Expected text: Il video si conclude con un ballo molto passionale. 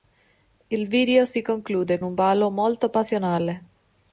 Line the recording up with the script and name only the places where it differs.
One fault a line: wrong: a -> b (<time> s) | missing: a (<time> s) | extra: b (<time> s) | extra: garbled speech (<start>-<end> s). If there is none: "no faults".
missing: con (2.0 s)